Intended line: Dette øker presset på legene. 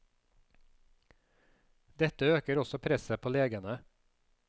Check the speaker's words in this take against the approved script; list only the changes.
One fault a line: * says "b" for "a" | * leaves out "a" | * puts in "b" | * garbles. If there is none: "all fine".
* puts in "også"